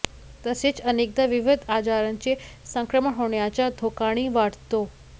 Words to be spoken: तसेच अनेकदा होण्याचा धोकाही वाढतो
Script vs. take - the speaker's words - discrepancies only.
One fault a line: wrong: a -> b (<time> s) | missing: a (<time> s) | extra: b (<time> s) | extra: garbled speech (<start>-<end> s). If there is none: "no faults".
extra: विविध आजारांचे संक्रमण (1.3 s)